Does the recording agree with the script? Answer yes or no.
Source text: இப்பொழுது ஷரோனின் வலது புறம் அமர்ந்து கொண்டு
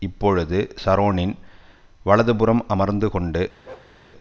yes